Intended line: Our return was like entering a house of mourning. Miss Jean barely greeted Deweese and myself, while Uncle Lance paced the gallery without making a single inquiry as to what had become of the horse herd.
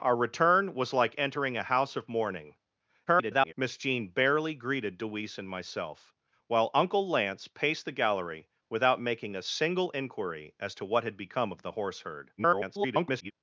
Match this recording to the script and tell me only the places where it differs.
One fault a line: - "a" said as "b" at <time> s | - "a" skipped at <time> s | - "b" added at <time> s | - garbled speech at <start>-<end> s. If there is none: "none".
- garbled speech at 3.1-3.5 s
- garbled speech at 12.4-13.3 s